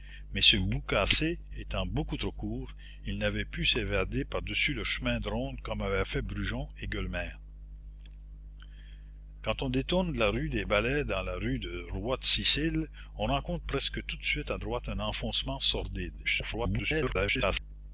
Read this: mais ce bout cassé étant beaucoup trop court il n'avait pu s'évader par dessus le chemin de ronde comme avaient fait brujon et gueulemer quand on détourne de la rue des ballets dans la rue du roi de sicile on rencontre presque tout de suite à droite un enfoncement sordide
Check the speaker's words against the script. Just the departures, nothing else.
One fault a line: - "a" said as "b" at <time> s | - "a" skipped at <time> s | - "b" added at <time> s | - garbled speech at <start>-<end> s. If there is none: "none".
- garbled speech at 16.2-17.6 s